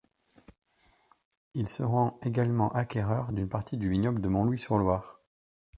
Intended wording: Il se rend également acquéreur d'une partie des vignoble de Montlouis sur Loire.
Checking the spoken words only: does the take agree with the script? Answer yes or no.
no